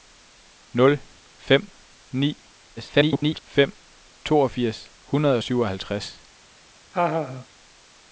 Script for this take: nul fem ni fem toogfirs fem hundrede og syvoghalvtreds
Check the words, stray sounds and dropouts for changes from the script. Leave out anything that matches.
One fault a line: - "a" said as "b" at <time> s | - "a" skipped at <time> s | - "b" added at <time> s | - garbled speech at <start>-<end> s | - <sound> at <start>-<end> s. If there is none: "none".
- garbled speech at 2.8-3.4 s
- "fem" skipped at 4.9 s
- laugh at 6.9-7.5 s